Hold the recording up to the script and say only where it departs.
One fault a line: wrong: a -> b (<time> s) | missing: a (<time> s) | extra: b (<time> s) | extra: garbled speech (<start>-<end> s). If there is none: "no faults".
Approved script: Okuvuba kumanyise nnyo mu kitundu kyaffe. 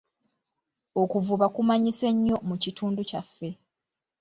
no faults